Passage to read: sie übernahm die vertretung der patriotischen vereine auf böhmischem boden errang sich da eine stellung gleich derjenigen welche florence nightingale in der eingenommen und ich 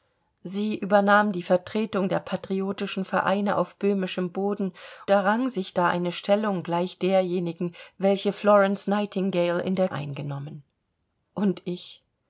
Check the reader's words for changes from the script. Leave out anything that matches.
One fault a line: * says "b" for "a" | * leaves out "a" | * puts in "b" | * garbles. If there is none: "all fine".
all fine